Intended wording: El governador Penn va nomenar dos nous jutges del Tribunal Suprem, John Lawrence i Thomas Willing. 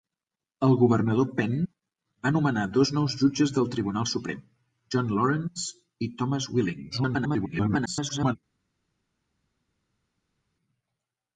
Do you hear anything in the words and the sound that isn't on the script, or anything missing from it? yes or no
yes